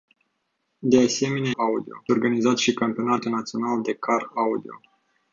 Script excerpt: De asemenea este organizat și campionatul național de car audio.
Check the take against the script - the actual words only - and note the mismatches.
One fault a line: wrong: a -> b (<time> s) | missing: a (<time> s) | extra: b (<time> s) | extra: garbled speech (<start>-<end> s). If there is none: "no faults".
wrong: este -> audio (1.6 s)